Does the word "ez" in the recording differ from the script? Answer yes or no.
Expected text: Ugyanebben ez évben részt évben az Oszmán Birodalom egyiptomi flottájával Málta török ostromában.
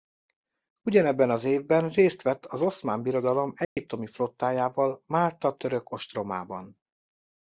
yes